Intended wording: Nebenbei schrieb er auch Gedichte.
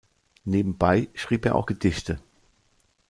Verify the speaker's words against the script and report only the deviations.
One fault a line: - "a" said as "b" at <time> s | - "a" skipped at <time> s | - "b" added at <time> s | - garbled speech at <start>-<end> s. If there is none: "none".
none